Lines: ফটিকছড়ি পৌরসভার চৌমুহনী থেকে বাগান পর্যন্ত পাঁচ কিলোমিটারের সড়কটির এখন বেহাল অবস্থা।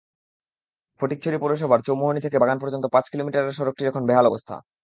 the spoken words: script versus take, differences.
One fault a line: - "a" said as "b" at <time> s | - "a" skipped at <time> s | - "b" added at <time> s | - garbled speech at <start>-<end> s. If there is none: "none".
none